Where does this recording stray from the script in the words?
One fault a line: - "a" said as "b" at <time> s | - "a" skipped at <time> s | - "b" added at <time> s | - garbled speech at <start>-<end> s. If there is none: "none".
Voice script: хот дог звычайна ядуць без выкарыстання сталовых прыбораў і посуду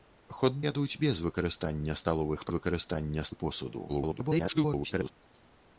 - "дог звычайна" skipped at 0.6 s
- "прыбораў" said as "выкарыстання" at 2.5 s
- garbled speech at 3.9-5.1 s